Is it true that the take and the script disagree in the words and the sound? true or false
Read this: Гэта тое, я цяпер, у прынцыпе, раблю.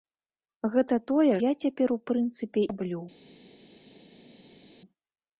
false